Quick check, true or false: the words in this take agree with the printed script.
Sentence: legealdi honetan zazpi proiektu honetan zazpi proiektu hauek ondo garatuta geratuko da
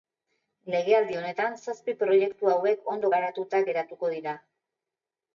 false